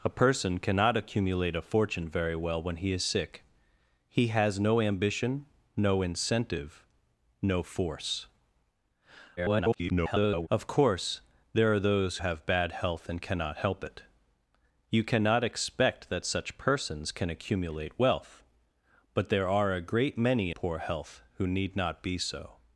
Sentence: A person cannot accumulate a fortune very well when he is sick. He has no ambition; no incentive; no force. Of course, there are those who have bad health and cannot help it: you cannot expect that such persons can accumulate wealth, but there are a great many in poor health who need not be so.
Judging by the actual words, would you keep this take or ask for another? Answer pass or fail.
fail